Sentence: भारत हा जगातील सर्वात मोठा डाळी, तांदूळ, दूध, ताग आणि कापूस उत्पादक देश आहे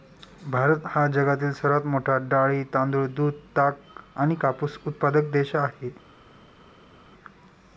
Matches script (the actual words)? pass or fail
pass